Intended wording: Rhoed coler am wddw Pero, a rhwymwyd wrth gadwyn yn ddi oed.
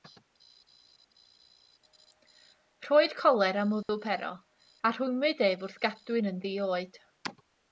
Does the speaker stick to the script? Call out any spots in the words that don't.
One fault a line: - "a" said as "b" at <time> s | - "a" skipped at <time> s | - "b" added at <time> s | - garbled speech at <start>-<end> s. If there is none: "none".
- "ef" added at 5.5 s